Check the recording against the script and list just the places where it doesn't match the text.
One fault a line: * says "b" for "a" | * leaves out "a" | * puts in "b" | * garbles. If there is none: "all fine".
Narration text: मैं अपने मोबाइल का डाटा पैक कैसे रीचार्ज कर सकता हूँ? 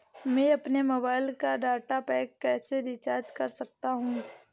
all fine